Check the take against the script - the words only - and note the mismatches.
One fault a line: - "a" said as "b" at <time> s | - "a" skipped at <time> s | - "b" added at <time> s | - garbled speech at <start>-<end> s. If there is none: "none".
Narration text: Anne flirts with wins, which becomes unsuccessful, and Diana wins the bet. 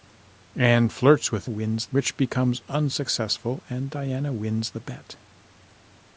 none